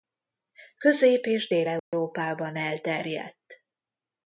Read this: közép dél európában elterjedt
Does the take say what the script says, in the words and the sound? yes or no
no